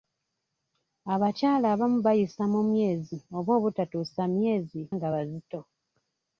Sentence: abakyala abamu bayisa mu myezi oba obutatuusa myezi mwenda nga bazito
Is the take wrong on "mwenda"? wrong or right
wrong